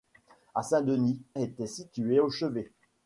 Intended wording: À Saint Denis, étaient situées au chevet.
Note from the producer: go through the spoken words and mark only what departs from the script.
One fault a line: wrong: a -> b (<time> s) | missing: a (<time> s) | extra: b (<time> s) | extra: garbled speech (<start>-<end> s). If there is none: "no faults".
no faults